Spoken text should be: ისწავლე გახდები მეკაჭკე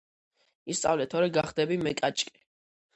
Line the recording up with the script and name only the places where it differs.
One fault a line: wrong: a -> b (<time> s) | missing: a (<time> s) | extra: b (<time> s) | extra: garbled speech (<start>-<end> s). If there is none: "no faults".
extra: თორე (1.1 s)